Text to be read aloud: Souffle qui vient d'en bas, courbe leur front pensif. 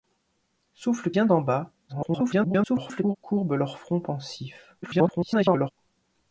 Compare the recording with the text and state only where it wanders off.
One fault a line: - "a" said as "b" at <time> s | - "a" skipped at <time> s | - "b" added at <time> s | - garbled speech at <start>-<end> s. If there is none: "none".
- "qui" skipped at 1.1 s
- garbled speech at 1.9-3.2 s
- garbled speech at 4.8-5.7 s